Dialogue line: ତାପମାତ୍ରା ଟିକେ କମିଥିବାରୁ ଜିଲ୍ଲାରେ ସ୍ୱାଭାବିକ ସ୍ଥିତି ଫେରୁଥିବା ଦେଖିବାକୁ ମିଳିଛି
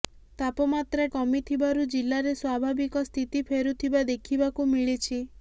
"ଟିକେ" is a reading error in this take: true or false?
true